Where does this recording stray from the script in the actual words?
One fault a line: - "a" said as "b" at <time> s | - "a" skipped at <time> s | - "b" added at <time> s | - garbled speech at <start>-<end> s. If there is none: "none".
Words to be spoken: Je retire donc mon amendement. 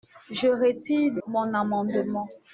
- "donc" skipped at 1.2 s